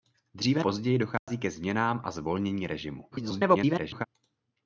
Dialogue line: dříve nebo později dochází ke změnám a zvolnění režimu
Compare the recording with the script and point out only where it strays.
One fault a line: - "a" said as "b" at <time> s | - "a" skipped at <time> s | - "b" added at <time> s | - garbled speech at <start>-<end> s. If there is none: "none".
- "nebo" skipped at 0.6 s
- garbled speech at 3.1-4.1 s